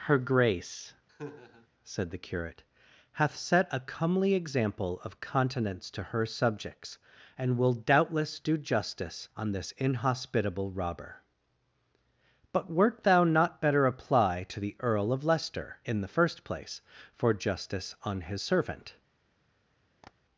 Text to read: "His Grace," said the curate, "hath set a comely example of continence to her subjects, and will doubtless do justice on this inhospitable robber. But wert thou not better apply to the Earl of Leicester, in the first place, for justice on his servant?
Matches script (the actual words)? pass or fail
fail